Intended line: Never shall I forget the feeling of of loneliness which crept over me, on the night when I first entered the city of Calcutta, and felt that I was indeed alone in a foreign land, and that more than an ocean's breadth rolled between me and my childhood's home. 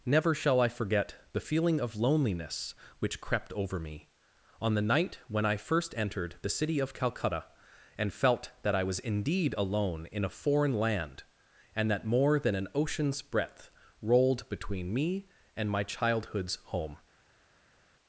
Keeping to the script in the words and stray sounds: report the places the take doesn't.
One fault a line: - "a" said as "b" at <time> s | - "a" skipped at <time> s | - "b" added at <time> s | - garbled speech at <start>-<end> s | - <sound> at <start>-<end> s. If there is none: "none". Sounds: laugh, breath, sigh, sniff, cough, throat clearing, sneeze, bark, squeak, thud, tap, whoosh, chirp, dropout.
- "of" skipped at 1.9 s